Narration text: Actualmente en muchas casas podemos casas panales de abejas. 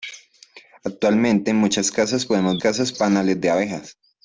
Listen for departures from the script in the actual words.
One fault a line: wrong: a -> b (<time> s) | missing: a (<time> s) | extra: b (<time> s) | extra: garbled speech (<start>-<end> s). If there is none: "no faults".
no faults